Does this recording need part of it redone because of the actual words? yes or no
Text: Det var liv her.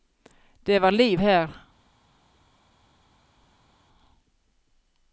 no